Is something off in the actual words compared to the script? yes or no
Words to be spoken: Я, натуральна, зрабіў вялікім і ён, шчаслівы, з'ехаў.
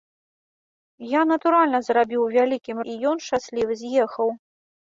no